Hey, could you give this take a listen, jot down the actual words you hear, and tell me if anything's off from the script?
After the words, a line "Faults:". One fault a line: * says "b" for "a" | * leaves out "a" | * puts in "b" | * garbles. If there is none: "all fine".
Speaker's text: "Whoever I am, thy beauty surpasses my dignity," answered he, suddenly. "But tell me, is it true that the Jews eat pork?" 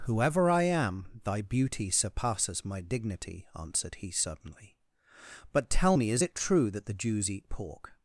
"Whoever I am, thy beauty surpasses my dignity," answered he, suddenly. "But tell me, is it true that the Jews eat pork?"
Faults:
all fine